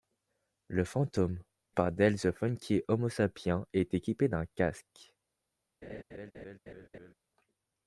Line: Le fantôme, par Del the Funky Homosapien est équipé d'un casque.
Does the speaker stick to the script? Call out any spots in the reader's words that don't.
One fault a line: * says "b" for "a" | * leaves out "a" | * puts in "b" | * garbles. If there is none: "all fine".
all fine